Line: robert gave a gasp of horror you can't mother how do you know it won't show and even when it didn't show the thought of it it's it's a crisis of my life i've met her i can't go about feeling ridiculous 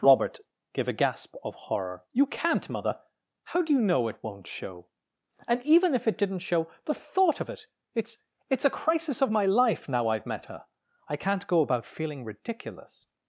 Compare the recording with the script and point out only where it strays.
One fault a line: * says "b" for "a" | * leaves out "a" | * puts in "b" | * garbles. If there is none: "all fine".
* says "if" for "when"
* puts in "now"